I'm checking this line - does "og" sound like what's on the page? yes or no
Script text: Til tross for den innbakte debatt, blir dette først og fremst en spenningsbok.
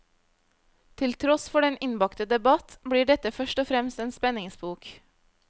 yes